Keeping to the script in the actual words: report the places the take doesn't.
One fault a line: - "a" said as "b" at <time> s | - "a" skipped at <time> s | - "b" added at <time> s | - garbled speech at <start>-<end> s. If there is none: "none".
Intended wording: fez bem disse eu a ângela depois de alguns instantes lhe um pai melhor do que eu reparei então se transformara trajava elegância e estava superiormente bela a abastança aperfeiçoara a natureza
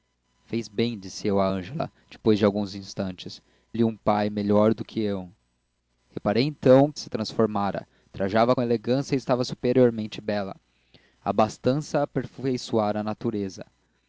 none